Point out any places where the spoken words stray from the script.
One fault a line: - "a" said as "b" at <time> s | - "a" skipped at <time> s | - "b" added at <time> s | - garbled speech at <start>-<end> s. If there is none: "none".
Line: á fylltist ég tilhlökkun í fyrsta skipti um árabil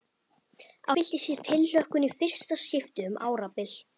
none